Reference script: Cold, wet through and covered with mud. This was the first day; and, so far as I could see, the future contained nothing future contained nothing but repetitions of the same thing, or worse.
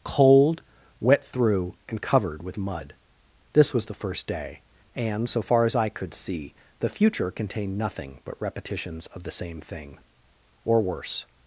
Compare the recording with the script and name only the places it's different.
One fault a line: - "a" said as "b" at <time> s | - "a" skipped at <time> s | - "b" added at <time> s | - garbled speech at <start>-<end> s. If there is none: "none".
- "future contained nothing" skipped at 8.2 s